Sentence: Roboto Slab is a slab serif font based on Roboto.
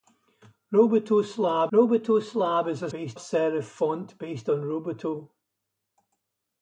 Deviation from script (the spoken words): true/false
true